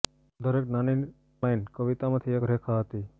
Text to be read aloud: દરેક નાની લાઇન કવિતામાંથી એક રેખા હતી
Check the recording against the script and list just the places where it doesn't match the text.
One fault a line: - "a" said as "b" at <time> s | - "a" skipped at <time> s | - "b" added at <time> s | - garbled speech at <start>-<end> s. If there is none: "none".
none